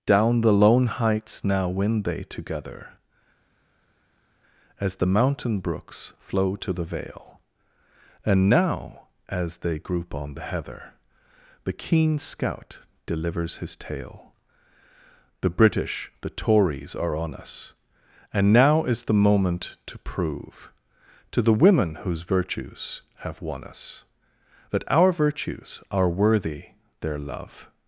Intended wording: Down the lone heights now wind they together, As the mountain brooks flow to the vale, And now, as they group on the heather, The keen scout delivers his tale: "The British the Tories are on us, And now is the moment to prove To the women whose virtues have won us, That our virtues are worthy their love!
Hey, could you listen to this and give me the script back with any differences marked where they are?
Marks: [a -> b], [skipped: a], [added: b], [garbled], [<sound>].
Down the lone heights now wind they together, As the mountain brooks flow to the vale, And now, as they group on the heather, The keen scout delivers his tale: "The British the Tories are on us, And now is the moment to prove To the women whose virtues have won us, That our virtues are worthy their love!